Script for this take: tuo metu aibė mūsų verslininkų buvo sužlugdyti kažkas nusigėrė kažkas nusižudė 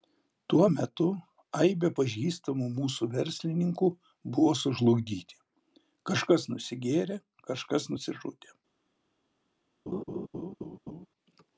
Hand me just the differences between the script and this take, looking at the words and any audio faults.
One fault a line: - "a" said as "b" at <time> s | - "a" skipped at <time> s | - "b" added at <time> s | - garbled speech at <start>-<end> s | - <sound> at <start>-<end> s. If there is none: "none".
- "pažįstamų" added at 2.0 s
- laugh at 9.9-11.1 s